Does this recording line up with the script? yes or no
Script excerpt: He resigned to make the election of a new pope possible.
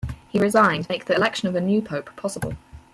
no